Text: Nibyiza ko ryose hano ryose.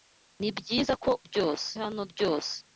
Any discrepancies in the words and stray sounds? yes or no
no